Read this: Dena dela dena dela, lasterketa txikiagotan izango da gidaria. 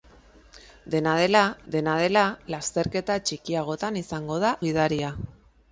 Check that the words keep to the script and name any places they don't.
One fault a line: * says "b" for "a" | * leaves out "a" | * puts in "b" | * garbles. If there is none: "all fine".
all fine